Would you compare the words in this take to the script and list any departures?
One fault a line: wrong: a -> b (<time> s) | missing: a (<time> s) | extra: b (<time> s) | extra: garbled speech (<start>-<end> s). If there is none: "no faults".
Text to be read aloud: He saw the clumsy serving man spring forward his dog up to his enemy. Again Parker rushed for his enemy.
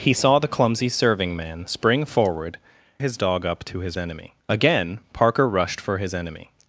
no faults